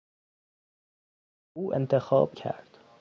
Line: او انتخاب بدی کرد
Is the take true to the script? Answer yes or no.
no